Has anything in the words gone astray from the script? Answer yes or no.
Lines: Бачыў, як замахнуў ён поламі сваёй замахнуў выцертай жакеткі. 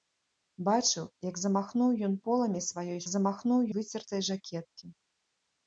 no